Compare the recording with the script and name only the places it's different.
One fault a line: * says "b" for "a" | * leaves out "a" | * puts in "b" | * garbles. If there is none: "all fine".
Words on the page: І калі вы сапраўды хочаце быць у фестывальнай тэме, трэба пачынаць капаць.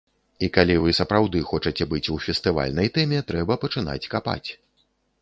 all fine